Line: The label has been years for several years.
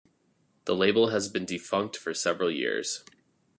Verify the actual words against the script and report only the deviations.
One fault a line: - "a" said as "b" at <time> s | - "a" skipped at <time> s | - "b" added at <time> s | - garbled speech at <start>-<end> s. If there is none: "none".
- "years" said as "defunct" at 1.4 s